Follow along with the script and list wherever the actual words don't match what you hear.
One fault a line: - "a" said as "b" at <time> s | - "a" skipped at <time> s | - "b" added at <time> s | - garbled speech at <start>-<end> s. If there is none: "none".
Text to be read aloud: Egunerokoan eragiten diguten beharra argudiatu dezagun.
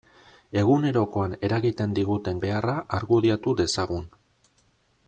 none